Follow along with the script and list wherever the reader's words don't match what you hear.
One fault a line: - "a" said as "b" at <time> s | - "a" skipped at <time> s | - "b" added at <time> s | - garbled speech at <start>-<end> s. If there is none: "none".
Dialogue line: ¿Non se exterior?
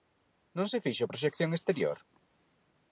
- "fixo proxección" added at 0.8 s